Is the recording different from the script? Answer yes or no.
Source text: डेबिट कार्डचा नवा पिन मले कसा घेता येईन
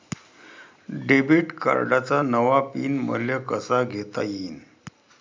no